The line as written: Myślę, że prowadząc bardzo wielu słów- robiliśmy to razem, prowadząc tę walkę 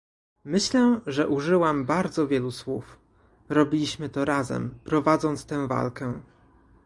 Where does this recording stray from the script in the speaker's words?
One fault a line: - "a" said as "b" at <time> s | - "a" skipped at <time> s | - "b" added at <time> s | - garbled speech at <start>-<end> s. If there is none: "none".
- "prowadząc" said as "użyłam" at 1.3 s